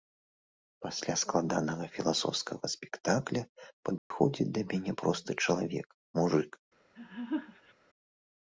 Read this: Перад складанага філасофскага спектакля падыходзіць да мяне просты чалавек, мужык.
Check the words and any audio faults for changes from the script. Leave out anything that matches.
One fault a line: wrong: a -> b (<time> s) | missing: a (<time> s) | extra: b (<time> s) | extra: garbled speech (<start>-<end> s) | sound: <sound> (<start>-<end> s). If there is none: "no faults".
wrong: Перад -> Пасля (0.8 s)
sound: dropout (4.0-4.1 s)
sound: laugh (6.9-7.7 s)